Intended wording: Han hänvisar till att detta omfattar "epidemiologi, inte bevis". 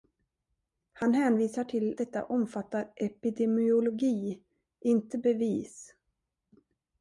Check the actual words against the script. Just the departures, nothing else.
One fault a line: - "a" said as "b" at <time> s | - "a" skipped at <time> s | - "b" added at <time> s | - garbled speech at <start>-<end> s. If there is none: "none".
- "att" skipped at 2.0 s